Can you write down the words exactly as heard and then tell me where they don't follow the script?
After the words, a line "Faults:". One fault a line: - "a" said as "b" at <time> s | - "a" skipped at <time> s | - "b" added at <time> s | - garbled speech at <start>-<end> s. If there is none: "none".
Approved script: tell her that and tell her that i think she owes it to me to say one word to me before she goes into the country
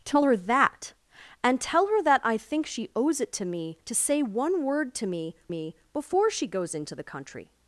tell her that and tell her that i think she owes it to me to say one word to me me before she goes into the country
Faults:
- "me" added at 5.5 s